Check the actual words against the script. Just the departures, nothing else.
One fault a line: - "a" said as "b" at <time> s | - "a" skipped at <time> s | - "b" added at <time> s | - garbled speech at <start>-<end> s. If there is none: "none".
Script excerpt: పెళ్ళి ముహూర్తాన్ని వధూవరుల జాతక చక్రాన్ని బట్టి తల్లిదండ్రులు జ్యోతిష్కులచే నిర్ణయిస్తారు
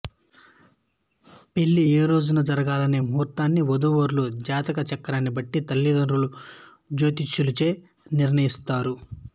- "ఏ రోజున జరగాలనే" added at 1.9 s